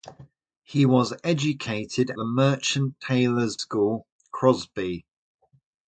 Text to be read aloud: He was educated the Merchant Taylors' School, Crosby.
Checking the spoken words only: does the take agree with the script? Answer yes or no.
yes